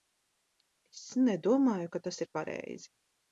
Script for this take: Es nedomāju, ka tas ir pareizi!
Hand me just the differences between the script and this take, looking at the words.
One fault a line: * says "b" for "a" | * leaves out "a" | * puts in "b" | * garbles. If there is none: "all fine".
all fine